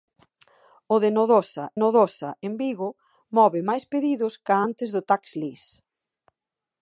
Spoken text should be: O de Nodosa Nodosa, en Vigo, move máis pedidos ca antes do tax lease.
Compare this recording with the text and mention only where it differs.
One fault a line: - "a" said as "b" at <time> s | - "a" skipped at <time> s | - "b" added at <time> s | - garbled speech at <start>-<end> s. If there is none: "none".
none